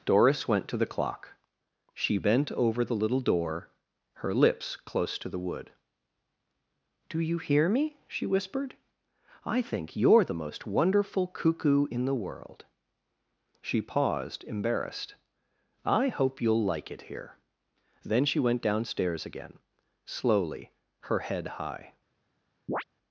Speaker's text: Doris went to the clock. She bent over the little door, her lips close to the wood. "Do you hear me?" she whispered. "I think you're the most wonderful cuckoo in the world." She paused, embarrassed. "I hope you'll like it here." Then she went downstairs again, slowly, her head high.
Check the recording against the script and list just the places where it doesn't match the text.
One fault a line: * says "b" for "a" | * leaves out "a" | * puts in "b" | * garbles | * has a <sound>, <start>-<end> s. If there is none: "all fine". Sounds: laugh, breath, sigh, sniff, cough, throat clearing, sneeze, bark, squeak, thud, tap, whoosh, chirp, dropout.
* has a chirp, 22.7-22.8 s